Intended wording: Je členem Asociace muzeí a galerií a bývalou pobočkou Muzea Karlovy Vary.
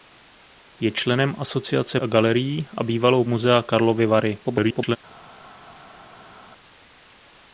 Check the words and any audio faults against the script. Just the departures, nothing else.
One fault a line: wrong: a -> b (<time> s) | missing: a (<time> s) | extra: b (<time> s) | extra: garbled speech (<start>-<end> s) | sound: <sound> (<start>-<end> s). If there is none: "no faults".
missing: muzeí (2.0 s)
missing: pobočkou (3.2 s)
extra: garbled speech (4.4-5.0 s)